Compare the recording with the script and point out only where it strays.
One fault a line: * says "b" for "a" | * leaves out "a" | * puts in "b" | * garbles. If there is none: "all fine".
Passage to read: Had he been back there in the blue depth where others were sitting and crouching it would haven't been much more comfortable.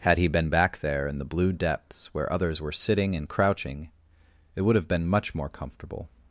* says "depths" for "depth"
* says "have" for "haven't"